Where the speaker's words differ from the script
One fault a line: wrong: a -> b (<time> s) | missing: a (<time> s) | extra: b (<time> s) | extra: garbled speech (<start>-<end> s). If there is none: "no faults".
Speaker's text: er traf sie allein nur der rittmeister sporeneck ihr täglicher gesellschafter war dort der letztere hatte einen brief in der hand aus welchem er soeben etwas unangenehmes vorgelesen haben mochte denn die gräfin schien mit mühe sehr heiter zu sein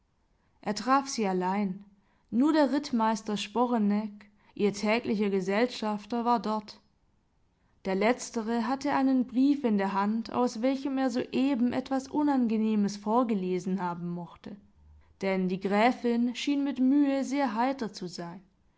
no faults